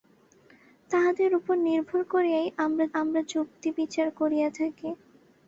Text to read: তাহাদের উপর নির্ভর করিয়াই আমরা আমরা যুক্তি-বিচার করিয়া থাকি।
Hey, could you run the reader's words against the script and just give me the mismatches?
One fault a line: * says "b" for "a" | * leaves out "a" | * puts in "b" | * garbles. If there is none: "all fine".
all fine